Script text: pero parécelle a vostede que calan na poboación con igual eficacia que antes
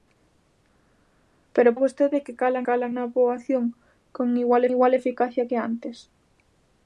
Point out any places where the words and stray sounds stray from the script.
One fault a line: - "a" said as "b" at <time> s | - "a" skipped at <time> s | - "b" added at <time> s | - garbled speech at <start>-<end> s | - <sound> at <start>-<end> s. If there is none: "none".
- "parécelle" skipped at 1.8 s
- "calan" added at 2.7 s
- "igual" added at 4.7 s